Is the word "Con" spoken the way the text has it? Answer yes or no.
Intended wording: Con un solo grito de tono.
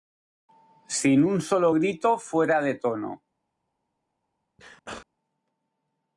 no